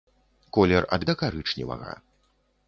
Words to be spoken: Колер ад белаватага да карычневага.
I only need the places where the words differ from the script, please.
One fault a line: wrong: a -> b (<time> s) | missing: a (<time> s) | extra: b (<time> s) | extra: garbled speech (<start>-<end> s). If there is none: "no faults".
missing: белаватага (1.1 s)